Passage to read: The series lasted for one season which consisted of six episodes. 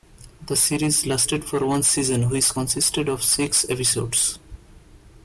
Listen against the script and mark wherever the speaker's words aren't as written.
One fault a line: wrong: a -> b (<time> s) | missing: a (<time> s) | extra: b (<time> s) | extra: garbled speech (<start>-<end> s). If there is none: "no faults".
no faults